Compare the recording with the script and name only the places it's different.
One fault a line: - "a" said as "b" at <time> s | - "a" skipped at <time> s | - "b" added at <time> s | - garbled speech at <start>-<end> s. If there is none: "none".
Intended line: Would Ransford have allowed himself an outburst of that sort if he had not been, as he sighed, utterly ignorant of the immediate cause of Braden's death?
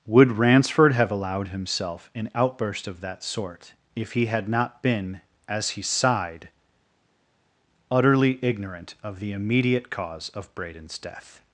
none